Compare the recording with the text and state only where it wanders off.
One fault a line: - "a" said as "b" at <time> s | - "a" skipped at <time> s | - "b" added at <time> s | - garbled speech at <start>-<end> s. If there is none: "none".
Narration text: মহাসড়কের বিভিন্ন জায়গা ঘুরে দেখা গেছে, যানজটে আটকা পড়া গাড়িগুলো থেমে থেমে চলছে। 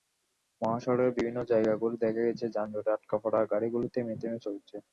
none